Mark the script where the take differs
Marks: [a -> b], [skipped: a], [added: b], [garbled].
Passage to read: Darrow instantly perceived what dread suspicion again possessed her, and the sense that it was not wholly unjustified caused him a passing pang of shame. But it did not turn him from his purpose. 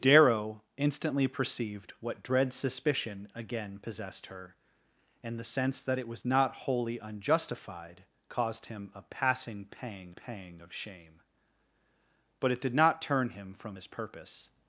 Darrow instantly perceived what dread suspicion again possessed her, and the sense that it was not wholly unjustified caused him a passing pang [added: pang] of shame. But it did not turn him from his purpose.